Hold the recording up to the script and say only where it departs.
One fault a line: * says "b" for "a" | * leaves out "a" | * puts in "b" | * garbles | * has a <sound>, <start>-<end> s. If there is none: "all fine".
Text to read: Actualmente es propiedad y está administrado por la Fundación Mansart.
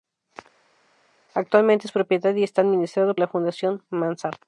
* leaves out "por"